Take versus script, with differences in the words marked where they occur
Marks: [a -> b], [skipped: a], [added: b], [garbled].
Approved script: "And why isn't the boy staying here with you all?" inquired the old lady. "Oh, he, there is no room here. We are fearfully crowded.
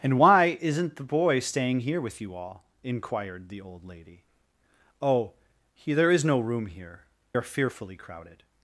"And why isn't the boy staying here with you all?" inquired the old lady. "Oh, he, there is no room here. [skipped: We] are fearfully crowded.